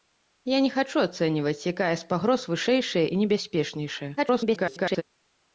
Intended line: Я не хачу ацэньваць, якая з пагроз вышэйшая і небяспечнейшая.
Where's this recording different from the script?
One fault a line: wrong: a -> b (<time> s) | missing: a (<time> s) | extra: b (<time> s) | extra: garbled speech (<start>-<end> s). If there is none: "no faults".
extra: garbled speech (4.2-5.0 s)